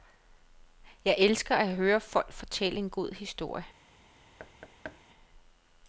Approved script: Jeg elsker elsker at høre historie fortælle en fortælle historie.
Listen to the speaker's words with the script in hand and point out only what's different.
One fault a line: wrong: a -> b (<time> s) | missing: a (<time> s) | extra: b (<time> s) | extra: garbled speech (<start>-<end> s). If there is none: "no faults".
missing: elsker (1.6 s)
wrong: historie -> folk (2.0 s)
wrong: fortælle -> god (2.9 s)